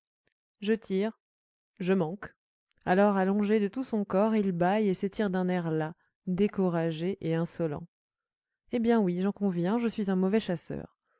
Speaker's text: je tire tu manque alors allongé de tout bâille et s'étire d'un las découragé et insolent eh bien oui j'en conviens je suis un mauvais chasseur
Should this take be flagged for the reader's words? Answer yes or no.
yes